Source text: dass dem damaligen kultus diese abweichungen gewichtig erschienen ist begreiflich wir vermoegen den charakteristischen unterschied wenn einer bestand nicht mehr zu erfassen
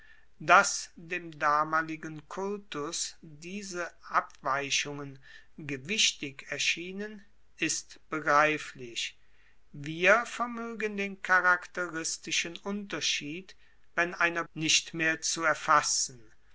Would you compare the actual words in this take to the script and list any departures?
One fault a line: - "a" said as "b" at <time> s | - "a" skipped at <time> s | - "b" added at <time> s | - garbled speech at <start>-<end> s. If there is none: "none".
- "bestand" skipped at 14.4 s